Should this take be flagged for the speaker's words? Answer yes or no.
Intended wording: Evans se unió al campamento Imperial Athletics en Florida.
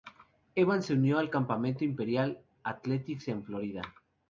no